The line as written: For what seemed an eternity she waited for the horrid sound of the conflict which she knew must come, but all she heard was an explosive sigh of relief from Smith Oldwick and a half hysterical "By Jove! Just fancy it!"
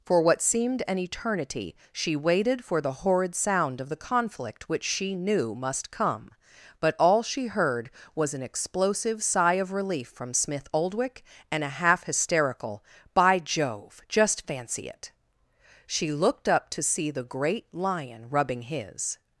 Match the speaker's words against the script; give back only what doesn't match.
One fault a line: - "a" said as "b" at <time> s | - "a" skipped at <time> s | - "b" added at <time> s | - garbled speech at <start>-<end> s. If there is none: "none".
- "She looked up to see the great lion rubbing his" added at 15.8 s